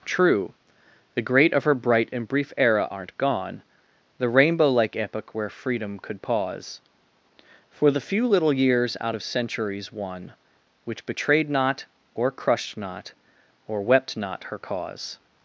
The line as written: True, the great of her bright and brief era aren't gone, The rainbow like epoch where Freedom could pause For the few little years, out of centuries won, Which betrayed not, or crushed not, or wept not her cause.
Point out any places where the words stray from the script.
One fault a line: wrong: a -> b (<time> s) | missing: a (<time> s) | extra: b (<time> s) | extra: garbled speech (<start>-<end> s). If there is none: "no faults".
no faults